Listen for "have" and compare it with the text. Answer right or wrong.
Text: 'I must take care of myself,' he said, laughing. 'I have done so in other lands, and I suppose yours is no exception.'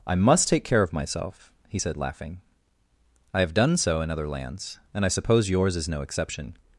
right